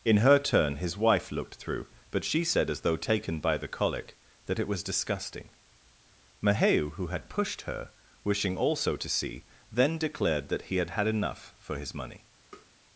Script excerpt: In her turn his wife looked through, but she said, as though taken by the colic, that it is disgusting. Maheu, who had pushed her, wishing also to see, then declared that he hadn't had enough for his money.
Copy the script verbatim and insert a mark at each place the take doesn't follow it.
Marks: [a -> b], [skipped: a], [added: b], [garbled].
In her turn his wife looked through, but she said, as though taken by the colic, that it [is -> was] disgusting. Maheu, who had pushed her, wishing also to see, then declared that he [hadn't -> had] had enough for his money.